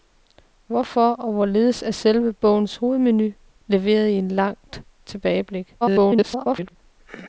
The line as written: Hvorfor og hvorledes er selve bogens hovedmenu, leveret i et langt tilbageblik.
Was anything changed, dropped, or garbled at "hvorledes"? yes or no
no